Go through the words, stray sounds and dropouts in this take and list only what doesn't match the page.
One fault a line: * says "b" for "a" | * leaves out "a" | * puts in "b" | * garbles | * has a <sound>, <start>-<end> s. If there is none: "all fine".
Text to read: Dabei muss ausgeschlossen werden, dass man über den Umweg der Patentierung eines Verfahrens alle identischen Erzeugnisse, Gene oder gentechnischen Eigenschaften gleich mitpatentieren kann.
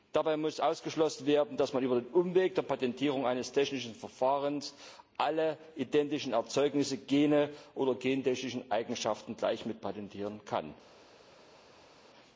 * puts in "technischen"